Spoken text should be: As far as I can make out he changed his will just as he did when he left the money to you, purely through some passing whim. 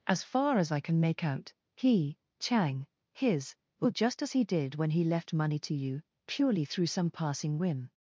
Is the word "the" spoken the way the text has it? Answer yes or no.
no